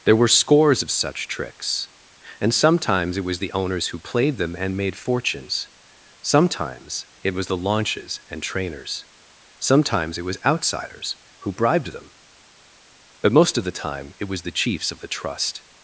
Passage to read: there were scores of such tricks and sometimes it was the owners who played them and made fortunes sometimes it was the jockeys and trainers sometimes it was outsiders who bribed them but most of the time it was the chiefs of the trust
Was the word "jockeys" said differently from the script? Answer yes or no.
yes